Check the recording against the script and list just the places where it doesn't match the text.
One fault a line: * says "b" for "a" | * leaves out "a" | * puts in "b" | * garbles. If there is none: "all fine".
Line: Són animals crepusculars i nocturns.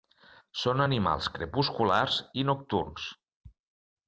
all fine